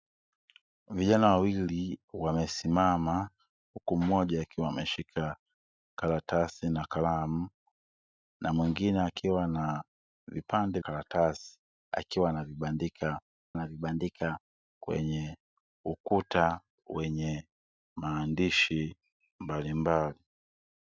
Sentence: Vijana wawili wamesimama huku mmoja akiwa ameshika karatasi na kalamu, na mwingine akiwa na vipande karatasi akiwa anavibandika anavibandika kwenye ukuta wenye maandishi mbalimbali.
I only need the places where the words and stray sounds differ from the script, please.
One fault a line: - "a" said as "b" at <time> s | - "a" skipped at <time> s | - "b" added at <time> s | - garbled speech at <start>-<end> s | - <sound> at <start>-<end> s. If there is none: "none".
none